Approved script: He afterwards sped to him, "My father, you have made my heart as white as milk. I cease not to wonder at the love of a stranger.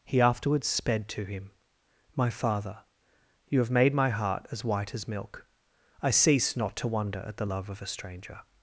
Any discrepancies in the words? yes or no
no